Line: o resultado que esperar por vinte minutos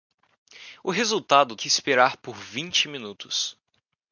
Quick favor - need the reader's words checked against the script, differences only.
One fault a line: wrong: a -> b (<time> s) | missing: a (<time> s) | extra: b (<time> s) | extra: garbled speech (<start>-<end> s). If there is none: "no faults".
no faults